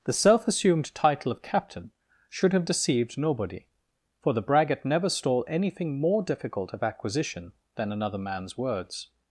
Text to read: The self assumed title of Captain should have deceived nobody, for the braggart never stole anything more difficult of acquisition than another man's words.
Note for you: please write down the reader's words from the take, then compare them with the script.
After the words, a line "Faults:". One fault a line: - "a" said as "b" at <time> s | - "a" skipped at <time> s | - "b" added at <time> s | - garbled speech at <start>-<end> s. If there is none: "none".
The self assumed title of Captain should have deceived nobody, for the braggart never stole anything more difficult of acquisition than another man's words.
Faults:
none